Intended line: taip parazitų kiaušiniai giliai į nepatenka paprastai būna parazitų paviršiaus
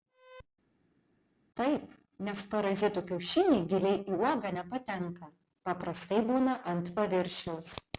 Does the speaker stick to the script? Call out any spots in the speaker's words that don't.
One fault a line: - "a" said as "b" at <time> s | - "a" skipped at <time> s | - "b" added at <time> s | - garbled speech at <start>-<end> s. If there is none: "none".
- "nes" added at 2.3 s
- "uogą" added at 4.2 s
- "parazitų" said as "ant" at 6.8 s